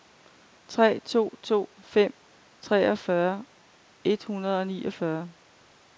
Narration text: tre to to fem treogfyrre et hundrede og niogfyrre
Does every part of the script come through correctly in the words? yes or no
yes